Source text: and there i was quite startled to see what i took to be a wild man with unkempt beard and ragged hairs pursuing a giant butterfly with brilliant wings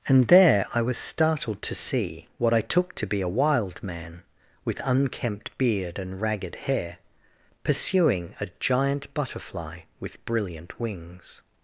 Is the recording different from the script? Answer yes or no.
yes